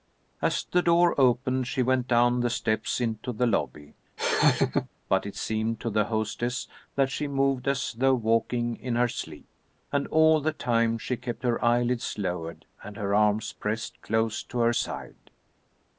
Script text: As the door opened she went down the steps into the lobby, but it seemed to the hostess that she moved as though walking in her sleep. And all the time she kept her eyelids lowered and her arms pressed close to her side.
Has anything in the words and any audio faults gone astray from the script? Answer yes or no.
yes